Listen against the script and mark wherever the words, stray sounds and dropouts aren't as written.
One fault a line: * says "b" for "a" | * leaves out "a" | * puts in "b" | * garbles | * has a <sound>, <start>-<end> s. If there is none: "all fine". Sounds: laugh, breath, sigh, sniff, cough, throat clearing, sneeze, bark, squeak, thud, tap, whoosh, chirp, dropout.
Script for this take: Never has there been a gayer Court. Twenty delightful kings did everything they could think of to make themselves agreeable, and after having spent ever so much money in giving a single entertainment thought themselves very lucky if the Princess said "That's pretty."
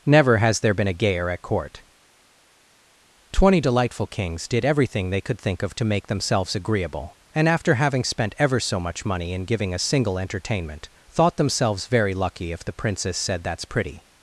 * puts in "at"